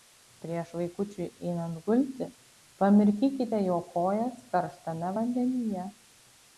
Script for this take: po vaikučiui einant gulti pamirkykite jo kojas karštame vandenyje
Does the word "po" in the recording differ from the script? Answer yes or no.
yes